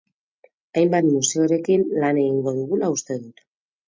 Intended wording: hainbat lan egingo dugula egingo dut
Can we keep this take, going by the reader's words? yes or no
no